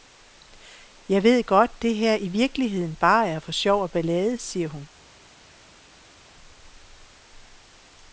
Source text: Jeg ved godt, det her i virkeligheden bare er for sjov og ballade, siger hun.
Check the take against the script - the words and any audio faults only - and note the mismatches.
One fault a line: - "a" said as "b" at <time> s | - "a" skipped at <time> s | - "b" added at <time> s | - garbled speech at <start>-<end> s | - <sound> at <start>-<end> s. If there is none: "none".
none